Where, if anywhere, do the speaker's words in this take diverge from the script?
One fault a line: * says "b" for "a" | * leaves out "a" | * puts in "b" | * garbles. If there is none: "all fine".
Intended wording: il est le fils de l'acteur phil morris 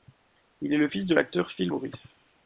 all fine